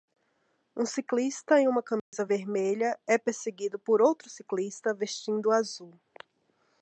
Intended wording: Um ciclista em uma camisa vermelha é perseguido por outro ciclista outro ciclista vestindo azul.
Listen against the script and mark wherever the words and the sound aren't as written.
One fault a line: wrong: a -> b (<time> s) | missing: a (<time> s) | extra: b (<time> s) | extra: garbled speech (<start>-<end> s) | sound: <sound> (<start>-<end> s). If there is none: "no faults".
sound: dropout (2.0-2.1 s)
missing: outro ciclista (4.9 s)